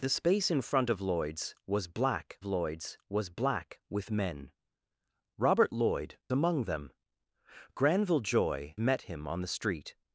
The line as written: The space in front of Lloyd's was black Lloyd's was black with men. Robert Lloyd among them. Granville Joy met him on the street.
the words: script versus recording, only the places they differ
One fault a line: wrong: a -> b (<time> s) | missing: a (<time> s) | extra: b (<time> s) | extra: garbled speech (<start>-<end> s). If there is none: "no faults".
no faults